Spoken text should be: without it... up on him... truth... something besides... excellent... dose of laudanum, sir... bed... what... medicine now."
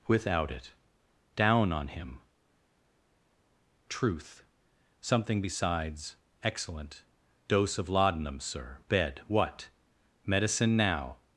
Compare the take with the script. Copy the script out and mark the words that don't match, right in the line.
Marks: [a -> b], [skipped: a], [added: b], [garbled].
without it... [up -> down] on him... truth... something besides... excellent... dose of laudanum, sir... bed... what... medicine now."